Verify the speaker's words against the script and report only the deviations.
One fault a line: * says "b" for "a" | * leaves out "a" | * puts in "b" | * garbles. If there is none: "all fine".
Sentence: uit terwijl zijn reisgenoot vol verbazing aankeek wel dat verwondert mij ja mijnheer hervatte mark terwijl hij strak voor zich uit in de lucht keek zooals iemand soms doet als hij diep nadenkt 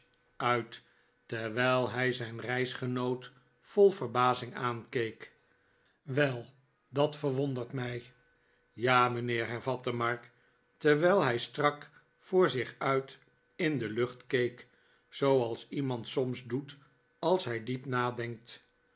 * puts in "hij"